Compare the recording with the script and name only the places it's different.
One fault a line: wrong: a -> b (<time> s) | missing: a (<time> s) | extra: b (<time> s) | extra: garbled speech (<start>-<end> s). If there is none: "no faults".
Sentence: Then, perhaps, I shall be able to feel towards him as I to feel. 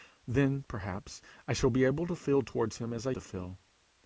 no faults